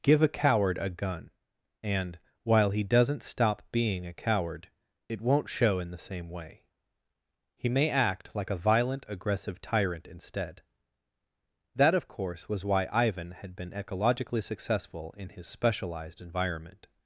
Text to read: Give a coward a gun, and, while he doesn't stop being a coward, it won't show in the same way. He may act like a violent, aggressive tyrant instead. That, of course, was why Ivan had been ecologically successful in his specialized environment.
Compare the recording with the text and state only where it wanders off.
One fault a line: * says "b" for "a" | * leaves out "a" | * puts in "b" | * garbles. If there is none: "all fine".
all fine